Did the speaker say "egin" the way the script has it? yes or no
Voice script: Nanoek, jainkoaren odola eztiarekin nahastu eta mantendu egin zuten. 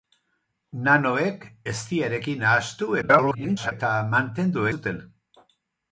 no